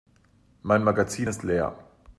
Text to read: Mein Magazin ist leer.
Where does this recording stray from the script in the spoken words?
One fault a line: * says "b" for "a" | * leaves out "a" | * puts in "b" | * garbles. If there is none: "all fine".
all fine